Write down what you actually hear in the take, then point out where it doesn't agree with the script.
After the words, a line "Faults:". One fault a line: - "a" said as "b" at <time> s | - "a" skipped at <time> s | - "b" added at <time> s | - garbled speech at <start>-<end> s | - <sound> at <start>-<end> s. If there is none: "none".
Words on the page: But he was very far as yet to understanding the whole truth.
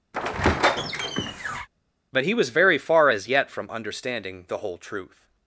But he was very far as yet from understanding the whole truth.
Faults:
- squeak at 0.1-1.7 s
- "to" said as "from" at 3.5 s